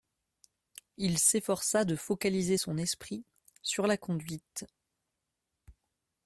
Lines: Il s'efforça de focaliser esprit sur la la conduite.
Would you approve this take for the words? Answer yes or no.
no